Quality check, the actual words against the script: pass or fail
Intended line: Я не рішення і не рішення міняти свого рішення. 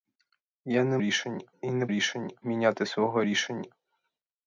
pass